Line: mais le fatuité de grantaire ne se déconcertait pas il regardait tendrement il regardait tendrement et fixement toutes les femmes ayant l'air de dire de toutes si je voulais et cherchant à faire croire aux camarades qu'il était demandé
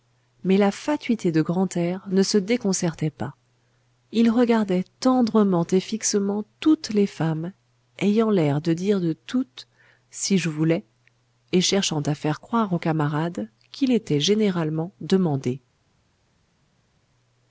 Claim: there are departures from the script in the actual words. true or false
true